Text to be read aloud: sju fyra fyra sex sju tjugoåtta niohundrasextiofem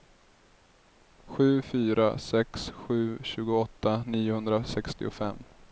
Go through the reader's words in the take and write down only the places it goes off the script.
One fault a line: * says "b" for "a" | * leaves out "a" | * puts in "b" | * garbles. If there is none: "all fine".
* leaves out "fyra"